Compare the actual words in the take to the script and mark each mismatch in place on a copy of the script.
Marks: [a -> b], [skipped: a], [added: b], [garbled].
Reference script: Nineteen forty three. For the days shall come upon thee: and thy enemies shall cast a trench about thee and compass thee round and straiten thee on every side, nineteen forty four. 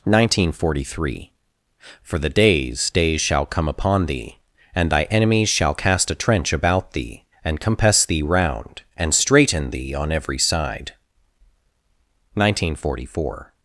Nineteen forty three. For the days [added: days] shall come upon thee: and thy enemies shall cast a trench about thee and compass thee round and straiten thee on every side, nineteen forty four.